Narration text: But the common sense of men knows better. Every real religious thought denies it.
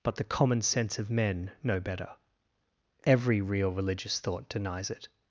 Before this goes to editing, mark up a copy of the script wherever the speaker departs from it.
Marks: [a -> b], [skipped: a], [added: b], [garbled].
But the common sense of men [knows -> know] better. Every real religious thought denies it.